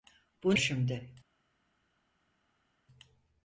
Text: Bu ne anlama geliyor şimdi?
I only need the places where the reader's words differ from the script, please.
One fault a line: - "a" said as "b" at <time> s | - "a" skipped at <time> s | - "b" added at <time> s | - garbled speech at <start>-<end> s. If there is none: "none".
- "ne anlama geliyor" skipped at 0.6 s